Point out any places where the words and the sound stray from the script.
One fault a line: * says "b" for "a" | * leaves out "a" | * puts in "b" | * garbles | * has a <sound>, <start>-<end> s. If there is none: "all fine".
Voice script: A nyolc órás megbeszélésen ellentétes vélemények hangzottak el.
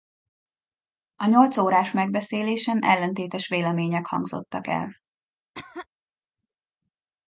* has a cough, 5.5-5.9 s